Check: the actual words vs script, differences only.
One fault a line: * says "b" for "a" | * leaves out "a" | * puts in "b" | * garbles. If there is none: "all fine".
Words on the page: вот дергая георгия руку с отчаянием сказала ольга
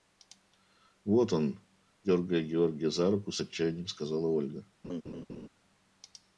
* puts in "он"
* puts in "за"